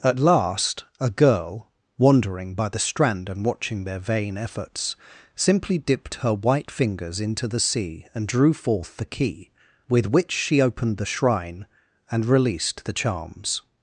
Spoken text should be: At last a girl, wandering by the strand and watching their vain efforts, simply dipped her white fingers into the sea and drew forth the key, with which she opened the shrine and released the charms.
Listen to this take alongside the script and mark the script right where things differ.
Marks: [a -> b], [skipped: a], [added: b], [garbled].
At last a girl, wandering by the strand and watching their vain efforts, simply dipped her white fingers into the sea and drew forth the key, with which she opened the shrine and released the charms.